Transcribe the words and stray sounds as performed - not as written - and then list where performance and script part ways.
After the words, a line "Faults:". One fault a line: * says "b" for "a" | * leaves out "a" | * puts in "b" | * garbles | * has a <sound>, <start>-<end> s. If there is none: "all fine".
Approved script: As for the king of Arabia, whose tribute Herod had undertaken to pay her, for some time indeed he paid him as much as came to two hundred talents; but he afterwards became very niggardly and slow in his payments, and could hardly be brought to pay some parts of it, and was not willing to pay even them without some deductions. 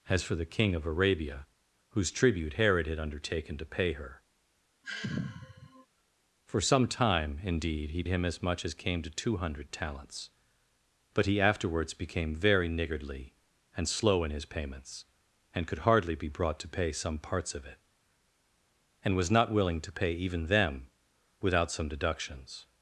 As for the king of Arabia, whose tribute Herod had undertaken to pay her, for some time indeed he him as much as came to two hundred talents; but he afterwards became very niggardly and slow in his payments, and could hardly be brought to pay some parts of it, and was not willing to pay even them without some deductions.
Faults:
* has a sigh, 4.8-5.9 s
* leaves out "paid"